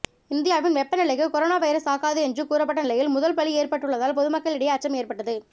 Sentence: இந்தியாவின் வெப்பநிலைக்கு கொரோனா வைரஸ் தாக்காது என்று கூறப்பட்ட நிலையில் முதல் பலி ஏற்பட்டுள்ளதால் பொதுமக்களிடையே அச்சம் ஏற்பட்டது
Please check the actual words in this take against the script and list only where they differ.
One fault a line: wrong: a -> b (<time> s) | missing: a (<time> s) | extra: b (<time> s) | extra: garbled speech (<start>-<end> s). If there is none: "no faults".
no faults